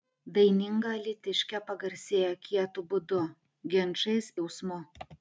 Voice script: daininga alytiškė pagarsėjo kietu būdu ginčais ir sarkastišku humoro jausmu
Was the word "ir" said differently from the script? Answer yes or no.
yes